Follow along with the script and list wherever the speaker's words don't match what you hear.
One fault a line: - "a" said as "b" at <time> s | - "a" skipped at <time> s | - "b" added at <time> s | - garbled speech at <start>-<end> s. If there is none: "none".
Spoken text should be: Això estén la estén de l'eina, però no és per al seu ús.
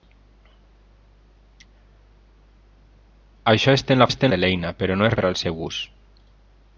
none